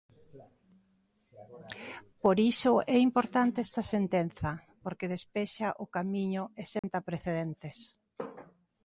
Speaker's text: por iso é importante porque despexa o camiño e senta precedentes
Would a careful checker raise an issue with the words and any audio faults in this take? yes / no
yes